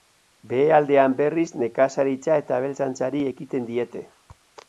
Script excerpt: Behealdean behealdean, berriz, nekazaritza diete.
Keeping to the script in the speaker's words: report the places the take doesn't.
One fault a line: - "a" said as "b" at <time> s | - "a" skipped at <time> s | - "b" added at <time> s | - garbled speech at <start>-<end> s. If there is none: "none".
- "behealdean" skipped at 1.1 s
- "eta abeltzaintzari ekiten" added at 2.4 s